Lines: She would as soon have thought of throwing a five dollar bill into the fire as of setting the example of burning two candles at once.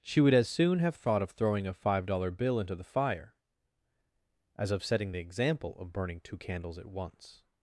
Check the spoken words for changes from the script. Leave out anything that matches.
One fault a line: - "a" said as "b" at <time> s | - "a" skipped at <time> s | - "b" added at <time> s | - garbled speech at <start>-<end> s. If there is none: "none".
none